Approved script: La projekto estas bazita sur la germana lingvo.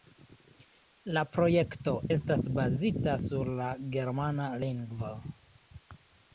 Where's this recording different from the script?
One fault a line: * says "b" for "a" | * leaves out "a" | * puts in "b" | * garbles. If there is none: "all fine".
all fine